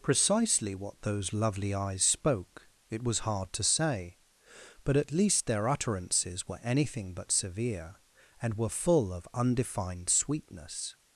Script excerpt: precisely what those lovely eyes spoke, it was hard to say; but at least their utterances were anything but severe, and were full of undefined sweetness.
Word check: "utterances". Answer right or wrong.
right